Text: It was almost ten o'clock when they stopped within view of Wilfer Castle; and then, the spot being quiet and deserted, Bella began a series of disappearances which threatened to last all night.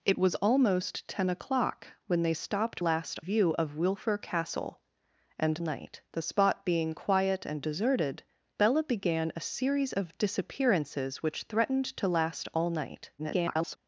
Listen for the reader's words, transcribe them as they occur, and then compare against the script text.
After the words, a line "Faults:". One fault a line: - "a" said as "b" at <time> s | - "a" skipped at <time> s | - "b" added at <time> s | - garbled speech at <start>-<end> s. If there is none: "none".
It was almost ten o'clock when they stopped last view of Wilfer Castle; and night, the spot being quiet and deserted, Bella began a series of disappearances which threatened to last all night. [garbled]
Faults:
- "within" said as "last" at 2.8 s
- "then" said as "night" at 5.6 s
- garbled speech at 13.2-13.8 s